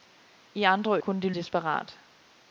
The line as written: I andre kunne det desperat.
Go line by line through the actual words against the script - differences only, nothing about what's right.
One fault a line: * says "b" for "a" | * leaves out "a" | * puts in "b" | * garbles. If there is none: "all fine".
all fine